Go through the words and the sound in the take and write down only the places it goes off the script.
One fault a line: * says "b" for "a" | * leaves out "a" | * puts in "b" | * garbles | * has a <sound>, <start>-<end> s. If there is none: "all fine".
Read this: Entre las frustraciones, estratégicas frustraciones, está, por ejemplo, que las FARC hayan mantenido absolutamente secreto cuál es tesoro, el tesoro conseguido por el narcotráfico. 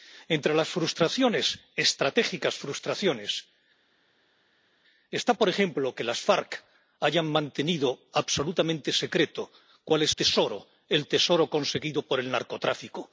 all fine